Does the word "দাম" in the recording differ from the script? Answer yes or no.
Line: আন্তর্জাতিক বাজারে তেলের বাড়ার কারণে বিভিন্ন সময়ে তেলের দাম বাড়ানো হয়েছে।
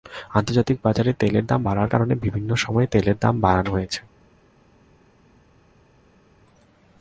no